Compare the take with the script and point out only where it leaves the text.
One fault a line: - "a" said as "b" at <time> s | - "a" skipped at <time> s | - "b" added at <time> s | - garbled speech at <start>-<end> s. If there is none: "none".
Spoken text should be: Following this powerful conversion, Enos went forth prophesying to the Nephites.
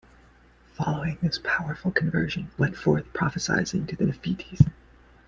- "Enos" skipped at 2.5 s